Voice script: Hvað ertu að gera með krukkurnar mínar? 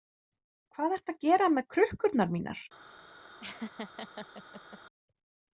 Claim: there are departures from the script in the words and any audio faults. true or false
true